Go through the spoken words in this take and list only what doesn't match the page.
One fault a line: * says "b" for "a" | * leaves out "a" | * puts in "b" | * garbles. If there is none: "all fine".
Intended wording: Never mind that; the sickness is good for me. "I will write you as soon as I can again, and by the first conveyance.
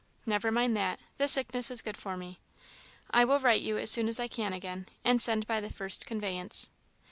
* puts in "send"